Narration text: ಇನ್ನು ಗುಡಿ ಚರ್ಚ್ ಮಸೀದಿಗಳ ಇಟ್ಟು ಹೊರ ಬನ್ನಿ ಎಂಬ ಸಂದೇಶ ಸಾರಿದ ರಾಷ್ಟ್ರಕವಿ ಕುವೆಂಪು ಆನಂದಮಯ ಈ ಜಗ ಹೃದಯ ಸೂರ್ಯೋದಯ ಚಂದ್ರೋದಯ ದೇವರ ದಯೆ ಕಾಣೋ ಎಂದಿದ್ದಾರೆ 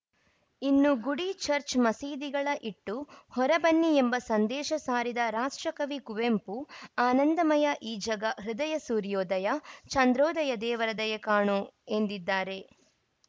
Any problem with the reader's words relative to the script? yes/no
no